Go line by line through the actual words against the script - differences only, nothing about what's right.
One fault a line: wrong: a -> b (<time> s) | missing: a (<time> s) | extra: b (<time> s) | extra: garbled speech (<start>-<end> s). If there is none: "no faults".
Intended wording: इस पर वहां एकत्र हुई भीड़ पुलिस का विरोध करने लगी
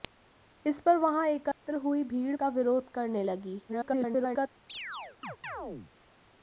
missing: पुलिस (2.4 s)
extra: garbled speech (3.7-4.5 s)